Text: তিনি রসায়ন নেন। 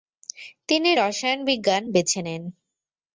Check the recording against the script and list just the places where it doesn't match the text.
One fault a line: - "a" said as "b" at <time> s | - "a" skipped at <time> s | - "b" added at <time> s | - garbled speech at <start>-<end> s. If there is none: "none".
- "বিজ্ঞান বেছে" added at 1.5 s